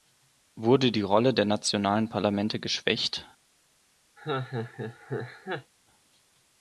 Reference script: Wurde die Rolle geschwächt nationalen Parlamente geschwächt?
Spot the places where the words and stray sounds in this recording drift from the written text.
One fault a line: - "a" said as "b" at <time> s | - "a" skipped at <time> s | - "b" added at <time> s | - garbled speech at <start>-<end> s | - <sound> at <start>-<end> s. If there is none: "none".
- "geschwächt" said as "der" at 1.3 s
- laugh at 4.2-5.7 s